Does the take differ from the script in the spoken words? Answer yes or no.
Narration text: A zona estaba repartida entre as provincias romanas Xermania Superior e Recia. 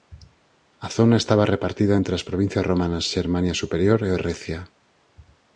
no